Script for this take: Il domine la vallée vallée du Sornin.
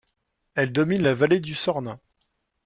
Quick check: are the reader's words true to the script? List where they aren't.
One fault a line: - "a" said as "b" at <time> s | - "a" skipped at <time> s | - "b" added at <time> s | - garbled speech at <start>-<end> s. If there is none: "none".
- "Il" said as "Elle" at 0.6 s
- "vallée" skipped at 1.4 s